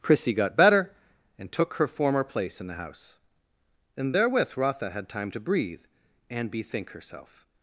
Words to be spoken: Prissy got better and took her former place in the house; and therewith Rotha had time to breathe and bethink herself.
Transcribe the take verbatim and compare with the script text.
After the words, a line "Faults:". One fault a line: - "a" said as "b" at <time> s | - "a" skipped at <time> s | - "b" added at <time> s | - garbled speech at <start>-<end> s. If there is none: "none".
Prissy got better and took her former place in the house; and therewith Rotha had time to breathe and bethink herself.
Faults:
none